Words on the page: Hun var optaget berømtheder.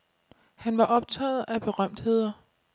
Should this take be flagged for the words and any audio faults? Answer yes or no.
yes